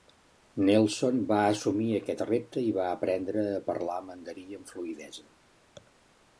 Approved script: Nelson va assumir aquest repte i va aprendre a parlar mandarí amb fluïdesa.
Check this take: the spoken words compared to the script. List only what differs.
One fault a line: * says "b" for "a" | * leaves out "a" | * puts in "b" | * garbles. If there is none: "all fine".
all fine